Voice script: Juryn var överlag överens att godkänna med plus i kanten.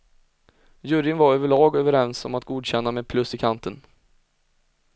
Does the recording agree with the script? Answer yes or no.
no